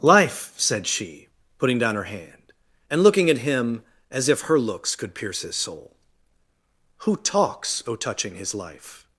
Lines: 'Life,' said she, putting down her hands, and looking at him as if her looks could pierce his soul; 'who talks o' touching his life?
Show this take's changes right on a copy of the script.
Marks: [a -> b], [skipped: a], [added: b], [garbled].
'Life,' said she, putting down her [hands, -> hand] and looking at him as if her looks could pierce his soul; 'who talks o' touching his life?